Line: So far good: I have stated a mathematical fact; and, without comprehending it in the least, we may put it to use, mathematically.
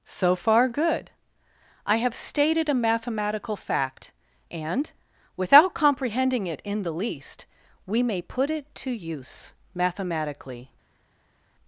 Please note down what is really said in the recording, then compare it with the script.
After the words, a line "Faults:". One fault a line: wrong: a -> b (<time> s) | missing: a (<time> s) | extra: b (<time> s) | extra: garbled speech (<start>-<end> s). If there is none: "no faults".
So far good: I have stated a mathematical fact; and, without comprehending it in the least, we may put it to use, mathematically.
Faults:
no faults